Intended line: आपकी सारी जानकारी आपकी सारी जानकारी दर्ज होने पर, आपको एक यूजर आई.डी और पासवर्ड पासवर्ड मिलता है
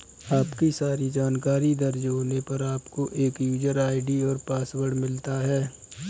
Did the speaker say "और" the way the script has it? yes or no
yes